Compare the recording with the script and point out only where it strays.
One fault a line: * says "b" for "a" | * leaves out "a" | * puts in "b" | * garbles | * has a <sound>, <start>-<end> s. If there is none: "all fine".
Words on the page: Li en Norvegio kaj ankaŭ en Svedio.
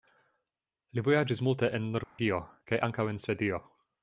* puts in "vojaĝis multe"
* has a dropout, 2.0-2.2 s